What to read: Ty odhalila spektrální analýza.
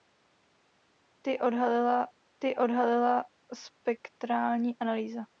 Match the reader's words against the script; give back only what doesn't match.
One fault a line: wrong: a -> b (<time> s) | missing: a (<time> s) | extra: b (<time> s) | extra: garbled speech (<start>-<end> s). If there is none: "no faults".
extra: ty odhalila (2.4 s)